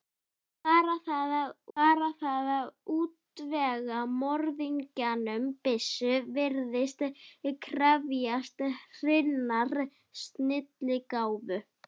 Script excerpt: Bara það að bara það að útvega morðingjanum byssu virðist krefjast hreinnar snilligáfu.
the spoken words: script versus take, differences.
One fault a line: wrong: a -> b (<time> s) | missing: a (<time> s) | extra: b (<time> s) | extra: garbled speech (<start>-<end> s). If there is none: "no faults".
no faults